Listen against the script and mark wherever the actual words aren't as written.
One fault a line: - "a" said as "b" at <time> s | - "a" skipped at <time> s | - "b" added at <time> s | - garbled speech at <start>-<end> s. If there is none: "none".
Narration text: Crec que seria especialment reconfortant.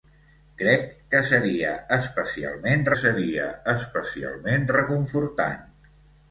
- "seria especialment" added at 3.0 s